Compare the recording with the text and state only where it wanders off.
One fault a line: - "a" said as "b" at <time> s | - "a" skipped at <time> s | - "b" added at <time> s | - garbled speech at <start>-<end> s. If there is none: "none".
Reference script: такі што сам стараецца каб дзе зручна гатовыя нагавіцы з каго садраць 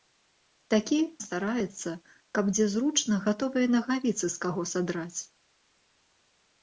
- "што сам" skipped at 1.0 s